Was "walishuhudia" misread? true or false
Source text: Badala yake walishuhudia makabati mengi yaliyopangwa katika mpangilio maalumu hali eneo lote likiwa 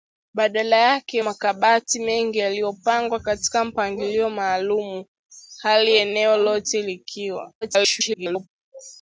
true